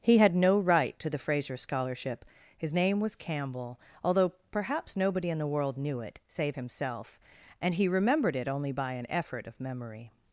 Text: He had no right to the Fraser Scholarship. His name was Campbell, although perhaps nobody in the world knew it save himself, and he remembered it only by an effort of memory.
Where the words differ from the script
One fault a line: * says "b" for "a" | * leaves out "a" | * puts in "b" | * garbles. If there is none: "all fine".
all fine